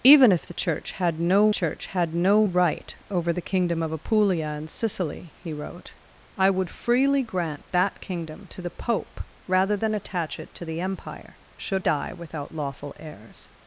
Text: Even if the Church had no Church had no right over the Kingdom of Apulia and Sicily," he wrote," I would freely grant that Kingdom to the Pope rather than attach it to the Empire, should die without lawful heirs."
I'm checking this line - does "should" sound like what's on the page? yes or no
yes